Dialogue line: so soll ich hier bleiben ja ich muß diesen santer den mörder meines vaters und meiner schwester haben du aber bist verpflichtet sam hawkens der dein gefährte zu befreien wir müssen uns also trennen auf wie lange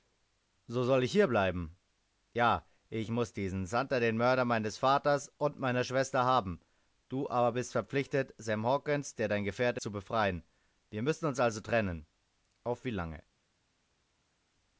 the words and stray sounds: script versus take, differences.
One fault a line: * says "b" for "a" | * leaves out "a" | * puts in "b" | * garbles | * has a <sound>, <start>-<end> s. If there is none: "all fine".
all fine